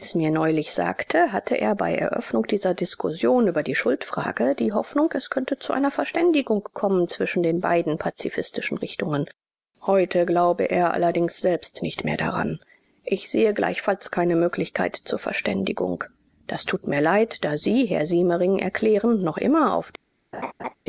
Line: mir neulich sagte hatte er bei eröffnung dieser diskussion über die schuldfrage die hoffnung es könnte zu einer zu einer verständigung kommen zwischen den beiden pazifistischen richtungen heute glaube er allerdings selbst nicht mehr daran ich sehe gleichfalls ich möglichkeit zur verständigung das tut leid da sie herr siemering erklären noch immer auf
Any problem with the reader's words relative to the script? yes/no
yes